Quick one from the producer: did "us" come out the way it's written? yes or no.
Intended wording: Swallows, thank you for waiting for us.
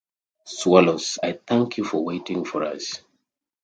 yes